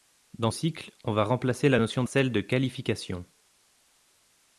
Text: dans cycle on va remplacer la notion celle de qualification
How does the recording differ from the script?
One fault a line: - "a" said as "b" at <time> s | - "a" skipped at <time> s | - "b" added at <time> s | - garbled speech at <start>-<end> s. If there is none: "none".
none